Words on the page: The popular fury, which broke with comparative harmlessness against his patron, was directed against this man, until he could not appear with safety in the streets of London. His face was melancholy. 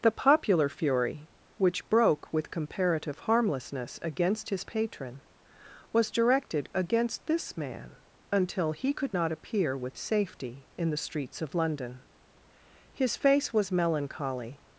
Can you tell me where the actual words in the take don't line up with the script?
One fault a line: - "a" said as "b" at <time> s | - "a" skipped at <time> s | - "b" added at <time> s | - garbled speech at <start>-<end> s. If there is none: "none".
none